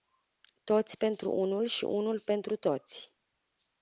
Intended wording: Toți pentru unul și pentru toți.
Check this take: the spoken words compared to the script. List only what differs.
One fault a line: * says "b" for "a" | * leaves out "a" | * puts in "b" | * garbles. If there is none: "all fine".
* puts in "unul"